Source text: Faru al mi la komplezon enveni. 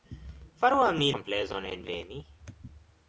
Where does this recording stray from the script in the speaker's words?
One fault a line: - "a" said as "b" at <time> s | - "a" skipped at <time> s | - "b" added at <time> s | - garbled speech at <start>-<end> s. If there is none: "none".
- "la" skipped at 1.1 s